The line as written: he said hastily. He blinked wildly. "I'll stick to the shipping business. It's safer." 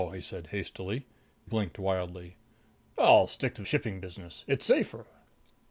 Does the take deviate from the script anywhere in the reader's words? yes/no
yes